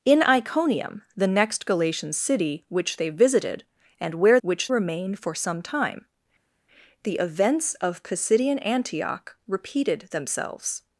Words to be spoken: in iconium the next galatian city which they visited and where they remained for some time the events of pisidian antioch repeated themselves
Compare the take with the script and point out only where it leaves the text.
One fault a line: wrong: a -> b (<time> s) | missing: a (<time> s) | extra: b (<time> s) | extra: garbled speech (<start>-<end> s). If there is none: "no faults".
wrong: they -> which (4.4 s)